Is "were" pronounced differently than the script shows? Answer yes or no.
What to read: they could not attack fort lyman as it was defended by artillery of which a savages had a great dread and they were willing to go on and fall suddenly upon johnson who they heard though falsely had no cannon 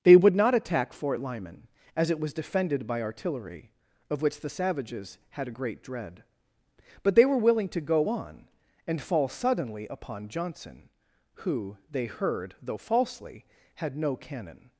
no